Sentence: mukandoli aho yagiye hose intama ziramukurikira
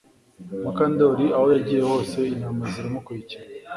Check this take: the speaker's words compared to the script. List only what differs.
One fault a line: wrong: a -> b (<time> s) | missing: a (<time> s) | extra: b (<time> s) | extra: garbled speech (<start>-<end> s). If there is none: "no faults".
no faults